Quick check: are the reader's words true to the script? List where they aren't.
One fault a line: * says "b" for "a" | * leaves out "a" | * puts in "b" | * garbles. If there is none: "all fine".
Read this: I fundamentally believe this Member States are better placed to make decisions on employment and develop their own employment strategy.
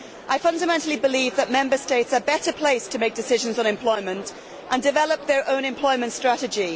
* says "that" for "this"